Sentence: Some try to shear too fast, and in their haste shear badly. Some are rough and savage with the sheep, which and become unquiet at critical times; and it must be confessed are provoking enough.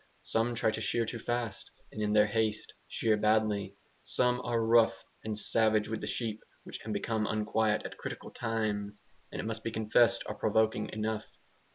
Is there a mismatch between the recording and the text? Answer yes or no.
no